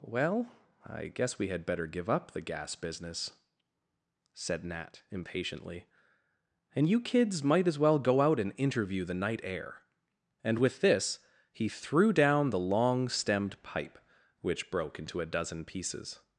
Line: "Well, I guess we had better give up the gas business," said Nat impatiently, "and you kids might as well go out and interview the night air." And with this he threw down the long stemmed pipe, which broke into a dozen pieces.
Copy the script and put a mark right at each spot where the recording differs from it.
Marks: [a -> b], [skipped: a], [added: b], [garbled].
"Well, I guess we had better give up the gas business," said Nat impatiently, "and you kids might as well go out and interview the night air." And with this he threw down the long stemmed pipe, which broke into a dozen pieces.